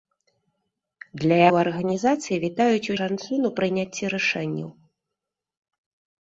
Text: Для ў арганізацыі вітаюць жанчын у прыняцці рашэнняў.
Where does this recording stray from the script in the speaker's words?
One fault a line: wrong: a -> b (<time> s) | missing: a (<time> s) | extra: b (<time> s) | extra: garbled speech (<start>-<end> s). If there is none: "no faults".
no faults